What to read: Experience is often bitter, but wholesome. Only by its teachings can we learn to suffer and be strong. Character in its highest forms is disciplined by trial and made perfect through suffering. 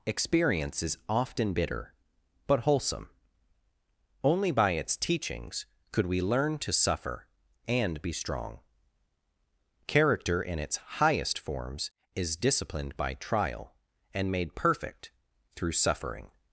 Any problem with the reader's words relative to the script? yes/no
yes